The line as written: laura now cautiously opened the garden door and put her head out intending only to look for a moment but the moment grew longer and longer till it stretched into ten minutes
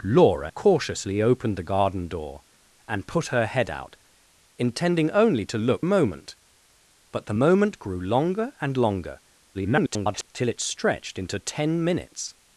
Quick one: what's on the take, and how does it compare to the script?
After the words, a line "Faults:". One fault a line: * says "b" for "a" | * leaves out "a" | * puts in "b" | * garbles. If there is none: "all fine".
laura cautiously opened the garden door and put her head out intending only to look a moment but the moment grew longer and longer [garbled] till it stretched into ten minutes
Faults:
* leaves out "now"
* leaves out "for"
* garbles